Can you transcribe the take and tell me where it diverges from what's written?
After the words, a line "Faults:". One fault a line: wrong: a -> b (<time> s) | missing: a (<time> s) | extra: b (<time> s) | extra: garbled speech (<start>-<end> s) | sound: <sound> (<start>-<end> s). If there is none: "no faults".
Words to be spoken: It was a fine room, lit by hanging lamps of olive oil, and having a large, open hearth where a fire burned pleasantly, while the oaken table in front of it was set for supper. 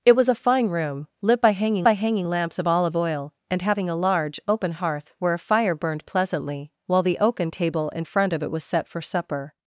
It was a fine room, lit by hanging by hanging lamps of olive oil, and having a large, open hearth where a fire burned pleasantly, while the oaken table in front of it was set for supper.
Faults:
extra: by hanging (1.8 s)